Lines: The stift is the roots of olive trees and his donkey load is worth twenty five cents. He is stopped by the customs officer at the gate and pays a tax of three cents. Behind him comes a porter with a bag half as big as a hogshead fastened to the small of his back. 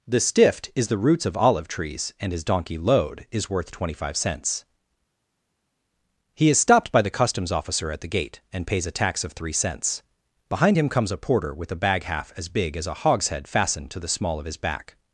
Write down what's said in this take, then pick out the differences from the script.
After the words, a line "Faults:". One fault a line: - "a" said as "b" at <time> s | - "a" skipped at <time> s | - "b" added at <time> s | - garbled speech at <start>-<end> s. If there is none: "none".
The stift is the roots of olive trees and his donkey load is worth twenty five cents. He is stopped by the customs officer at the gate and pays a tax of three cents. Behind him comes a porter with a bag half as big as a hogshead fastened to the small of his back.
Faults:
none